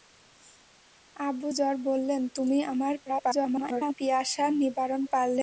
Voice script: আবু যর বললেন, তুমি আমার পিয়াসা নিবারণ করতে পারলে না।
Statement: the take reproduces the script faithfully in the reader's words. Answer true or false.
false